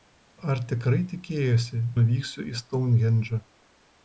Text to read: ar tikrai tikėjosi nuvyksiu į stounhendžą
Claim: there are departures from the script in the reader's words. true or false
false